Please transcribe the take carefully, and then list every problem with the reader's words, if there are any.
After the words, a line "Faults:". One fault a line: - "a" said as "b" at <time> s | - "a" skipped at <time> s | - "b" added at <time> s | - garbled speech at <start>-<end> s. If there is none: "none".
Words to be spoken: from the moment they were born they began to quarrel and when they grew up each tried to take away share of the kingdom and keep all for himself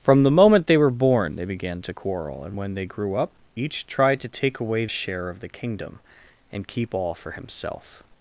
from the moment they were born they began to quarrel and when they grew up each tried to take away share of the kingdom and keep all for himself
Faults:
none